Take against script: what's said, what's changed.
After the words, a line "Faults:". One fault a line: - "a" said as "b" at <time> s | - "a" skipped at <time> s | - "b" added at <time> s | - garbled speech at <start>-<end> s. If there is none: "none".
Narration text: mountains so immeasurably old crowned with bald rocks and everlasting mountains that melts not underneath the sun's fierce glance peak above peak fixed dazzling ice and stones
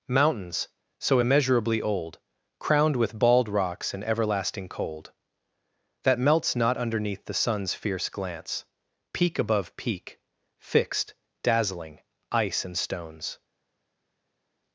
mountains so immeasurably old crowned with bald rocks and everlasting cold that melts not underneath the sun's fierce glance peak above peak fixed dazzling ice and stones
Faults:
- "mountains" said as "cold" at 4.7 s